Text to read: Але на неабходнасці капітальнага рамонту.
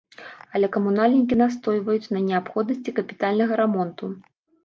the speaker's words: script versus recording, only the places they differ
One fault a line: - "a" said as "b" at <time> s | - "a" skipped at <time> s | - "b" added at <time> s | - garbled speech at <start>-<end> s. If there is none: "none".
- "камунальнікі настойваюць" added at 0.7 s